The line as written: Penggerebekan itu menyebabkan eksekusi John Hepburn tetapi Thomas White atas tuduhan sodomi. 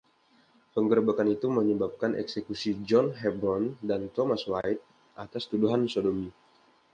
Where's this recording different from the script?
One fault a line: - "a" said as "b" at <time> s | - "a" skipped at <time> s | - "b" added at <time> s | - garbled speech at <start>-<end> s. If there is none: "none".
- "tetapi" said as "dan" at 3.9 s